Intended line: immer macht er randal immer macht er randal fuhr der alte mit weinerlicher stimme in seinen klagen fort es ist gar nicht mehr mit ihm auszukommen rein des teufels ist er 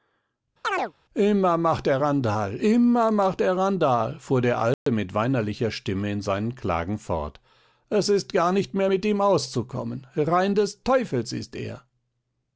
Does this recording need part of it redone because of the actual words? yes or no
no